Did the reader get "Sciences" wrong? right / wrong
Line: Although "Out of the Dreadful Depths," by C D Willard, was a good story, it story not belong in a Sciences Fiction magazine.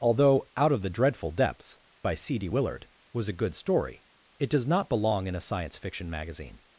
wrong